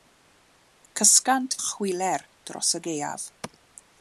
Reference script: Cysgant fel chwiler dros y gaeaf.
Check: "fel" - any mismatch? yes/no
yes